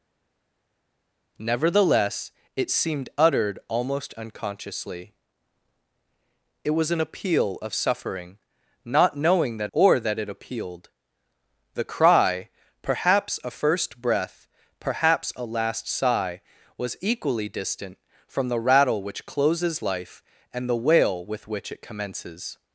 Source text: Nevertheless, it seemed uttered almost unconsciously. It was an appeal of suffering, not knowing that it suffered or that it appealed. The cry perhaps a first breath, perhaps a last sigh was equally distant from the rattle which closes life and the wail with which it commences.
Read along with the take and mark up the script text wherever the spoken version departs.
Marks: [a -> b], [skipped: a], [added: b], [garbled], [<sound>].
Nevertheless, it seemed uttered almost unconsciously. It was an appeal of suffering, not knowing that [skipped: it suffered] or that it appealed. The cry perhaps a first breath, perhaps a last sigh was equally distant from the rattle which closes life and the wail with which it commences.